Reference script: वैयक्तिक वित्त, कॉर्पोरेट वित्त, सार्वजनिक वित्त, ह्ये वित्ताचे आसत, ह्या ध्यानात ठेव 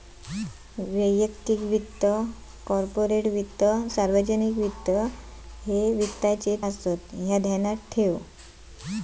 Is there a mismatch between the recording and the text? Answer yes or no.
no